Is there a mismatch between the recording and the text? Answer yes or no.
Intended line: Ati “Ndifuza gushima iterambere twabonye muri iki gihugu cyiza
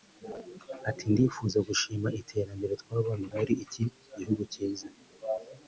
no